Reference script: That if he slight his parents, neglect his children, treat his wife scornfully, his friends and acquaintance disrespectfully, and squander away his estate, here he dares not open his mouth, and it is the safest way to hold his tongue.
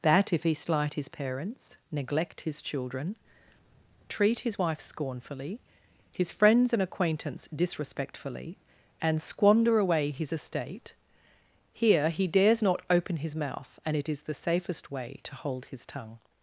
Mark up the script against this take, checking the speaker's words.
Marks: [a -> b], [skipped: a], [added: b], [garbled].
That if he slight his parents, neglect his children, treat his wife scornfully, his friends and acquaintance disrespectfully, and squander away his estate, here he dares not open his mouth, and it is the safest way to hold his tongue.